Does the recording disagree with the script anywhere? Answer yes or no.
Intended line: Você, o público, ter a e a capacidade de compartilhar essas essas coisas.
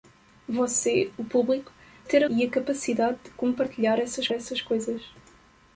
no